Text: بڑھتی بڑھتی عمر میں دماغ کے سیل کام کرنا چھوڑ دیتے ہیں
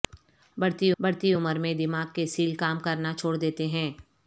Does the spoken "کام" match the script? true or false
true